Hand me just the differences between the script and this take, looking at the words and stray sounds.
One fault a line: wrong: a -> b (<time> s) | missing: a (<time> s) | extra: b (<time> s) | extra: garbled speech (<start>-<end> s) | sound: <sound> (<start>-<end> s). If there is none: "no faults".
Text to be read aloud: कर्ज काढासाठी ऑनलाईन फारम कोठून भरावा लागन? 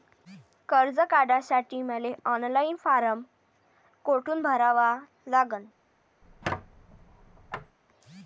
extra: मले (1.8 s)
sound: squeak (6.2-7.8 s)